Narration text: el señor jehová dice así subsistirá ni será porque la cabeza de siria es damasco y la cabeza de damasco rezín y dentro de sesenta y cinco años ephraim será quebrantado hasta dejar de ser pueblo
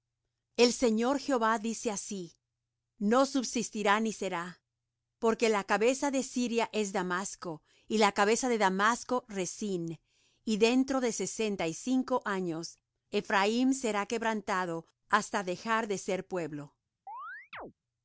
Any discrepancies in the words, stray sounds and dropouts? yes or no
yes